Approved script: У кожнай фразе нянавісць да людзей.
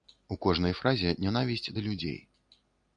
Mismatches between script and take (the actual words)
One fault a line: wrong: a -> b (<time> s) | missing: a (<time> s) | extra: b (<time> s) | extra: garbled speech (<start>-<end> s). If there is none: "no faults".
no faults